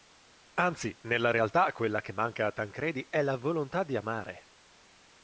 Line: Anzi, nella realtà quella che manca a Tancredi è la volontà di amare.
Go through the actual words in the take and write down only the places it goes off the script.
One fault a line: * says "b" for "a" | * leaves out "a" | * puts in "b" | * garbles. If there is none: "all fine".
all fine